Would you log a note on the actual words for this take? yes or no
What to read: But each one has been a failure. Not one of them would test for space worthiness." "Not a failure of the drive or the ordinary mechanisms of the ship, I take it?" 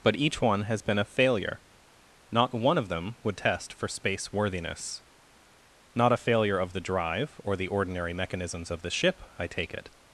no